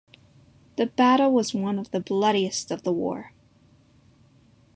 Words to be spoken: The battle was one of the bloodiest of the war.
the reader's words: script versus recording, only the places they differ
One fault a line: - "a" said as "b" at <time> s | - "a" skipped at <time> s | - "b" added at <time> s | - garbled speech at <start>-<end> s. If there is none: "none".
none